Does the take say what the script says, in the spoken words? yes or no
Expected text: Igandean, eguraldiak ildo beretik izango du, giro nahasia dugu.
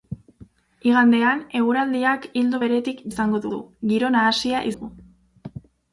yes